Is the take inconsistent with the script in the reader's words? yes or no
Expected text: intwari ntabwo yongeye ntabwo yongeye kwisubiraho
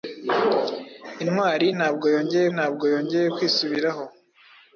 no